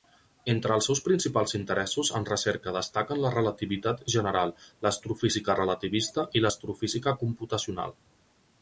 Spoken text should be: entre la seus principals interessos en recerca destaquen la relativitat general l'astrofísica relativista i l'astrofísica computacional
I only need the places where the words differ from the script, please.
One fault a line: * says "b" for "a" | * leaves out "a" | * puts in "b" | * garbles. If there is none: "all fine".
* says "els" for "la"